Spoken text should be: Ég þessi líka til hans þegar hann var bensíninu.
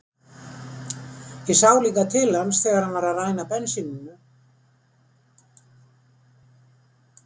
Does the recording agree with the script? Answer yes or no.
no